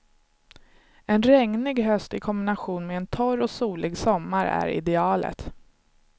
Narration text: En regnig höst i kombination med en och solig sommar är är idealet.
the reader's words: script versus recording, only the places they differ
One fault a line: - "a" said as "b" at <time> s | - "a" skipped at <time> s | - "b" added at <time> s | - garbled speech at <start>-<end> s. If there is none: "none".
- "torr" added at 3.1 s
- "är" skipped at 4.7 s